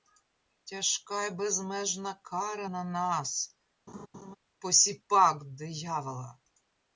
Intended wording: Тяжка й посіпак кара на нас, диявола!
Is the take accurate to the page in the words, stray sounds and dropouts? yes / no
no